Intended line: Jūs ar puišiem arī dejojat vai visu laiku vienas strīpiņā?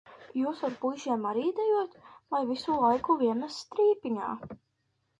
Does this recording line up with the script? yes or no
yes